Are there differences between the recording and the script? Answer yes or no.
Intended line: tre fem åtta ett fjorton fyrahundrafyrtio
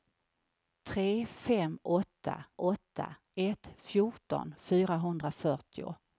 yes